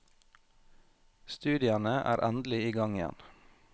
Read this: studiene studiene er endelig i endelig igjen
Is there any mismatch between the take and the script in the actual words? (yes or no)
yes